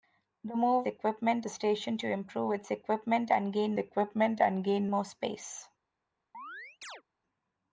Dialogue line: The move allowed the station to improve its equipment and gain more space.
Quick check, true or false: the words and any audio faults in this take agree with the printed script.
false